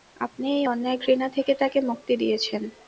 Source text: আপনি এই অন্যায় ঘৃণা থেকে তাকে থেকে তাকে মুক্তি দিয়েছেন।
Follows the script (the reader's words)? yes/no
no